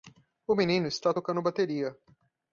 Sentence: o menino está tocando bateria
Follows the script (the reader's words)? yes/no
yes